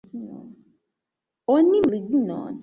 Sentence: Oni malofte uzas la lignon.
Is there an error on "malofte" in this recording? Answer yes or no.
yes